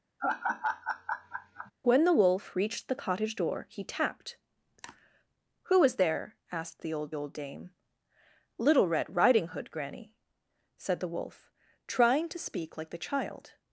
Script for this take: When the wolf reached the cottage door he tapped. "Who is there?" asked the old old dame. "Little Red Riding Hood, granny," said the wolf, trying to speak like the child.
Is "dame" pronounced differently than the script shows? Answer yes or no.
no